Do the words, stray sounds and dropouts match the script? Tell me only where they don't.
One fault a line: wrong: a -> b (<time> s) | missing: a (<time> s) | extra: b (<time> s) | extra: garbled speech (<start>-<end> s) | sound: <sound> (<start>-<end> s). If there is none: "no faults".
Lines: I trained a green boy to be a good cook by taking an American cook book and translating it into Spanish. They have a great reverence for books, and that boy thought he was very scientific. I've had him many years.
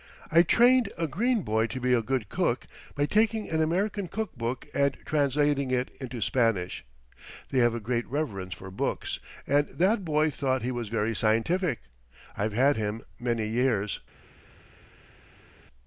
no faults